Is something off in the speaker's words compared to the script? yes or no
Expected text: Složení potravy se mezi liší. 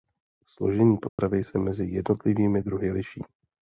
yes